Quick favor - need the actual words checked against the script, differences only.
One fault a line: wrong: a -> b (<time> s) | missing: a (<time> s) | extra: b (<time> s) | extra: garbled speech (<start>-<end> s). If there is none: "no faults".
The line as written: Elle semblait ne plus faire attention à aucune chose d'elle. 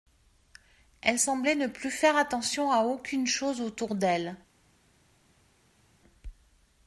extra: autour (3.6 s)